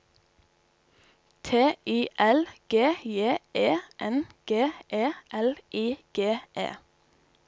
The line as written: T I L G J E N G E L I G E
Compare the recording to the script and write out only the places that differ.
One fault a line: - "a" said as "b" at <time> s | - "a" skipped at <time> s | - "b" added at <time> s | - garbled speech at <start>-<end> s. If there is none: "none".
none